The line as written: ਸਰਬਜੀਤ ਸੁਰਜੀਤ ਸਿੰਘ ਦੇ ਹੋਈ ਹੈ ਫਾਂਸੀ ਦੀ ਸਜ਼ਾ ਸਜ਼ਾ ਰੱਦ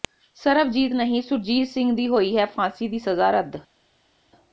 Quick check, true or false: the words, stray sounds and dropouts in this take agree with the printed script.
false